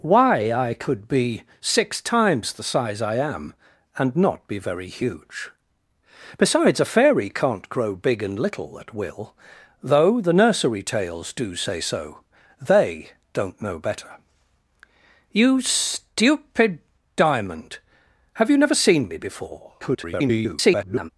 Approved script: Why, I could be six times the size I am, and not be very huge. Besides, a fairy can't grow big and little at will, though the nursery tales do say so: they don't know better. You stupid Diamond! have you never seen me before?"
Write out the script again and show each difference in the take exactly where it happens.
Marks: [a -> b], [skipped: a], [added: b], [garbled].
Why, I could be six times the size I am, and not be very huge. Besides, a fairy can't grow big and little at will, though the nursery tales do say so: they don't know better. You stupid Diamond! have you never seen me before?" [garbled]